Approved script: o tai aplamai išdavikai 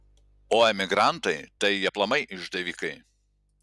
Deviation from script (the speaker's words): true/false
true